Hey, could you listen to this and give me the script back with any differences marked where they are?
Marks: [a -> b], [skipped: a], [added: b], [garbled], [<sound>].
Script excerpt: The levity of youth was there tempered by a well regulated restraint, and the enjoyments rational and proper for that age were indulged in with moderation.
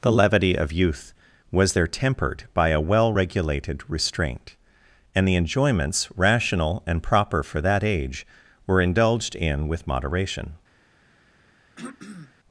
The levity of youth was there tempered by a well regulated restraint, and the enjoyments rational and proper for that age were indulged in with moderation. [throat clearing]